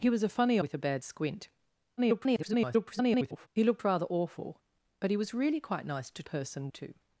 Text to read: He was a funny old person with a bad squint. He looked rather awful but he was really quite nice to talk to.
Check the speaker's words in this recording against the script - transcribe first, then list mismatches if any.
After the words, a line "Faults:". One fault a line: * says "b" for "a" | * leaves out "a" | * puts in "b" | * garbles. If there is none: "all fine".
He was a funny with a bad squint. [garbled] He looked rather awful but he was really quite nice to person to.
Faults:
* leaves out "old person"
* garbles
* says "person" for "talk"